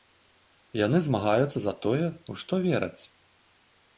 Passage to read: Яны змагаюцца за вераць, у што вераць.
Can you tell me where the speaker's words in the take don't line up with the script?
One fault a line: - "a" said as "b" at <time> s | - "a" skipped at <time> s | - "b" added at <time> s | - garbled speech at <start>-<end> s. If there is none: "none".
- "вераць" said as "тое" at 1.9 s